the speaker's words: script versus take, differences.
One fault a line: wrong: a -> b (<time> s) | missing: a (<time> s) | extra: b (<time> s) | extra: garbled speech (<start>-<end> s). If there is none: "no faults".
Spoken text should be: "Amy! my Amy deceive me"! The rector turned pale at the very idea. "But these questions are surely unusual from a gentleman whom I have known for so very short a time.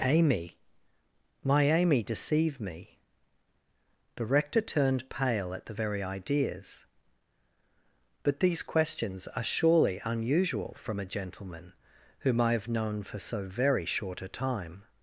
wrong: idea -> ideas (6.0 s)